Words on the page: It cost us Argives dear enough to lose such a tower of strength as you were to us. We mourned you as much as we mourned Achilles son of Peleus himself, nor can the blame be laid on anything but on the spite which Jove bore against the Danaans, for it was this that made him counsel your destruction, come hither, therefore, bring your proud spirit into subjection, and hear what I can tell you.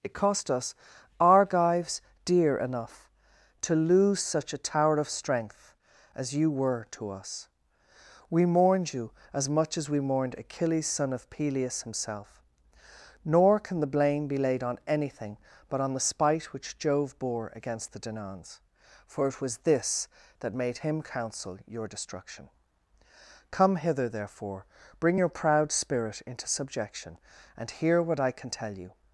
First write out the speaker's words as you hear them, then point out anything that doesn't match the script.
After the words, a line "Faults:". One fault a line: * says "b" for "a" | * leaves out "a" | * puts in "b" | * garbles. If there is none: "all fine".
It cost us Argives dear enough to lose such a tower of strength as you were to us. We mourned you as much as we mourned Achilles son of Peleus himself, nor can the blame be laid on anything but on the spite which Jove bore against the Danaans, for it was this that made him counsel your destruction, come hither, therefore, bring your proud spirit into subjection, and hear what I can tell you.
Faults:
all fine